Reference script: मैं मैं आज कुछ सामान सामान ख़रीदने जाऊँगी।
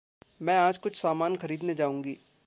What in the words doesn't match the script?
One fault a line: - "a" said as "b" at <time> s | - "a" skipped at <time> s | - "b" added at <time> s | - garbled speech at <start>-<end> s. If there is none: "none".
- "मैं" skipped at 0.6 s
- "सामान" skipped at 1.4 s